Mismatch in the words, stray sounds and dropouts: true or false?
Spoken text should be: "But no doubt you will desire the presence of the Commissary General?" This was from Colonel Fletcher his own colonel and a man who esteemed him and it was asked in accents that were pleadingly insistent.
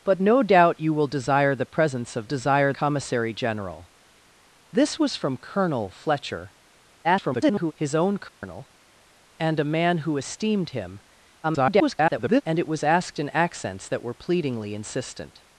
true